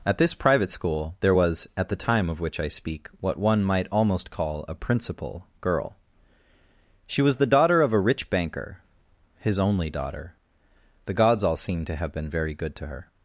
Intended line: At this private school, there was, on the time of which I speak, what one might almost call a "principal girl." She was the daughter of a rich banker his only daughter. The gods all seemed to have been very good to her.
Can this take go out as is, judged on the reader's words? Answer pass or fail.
fail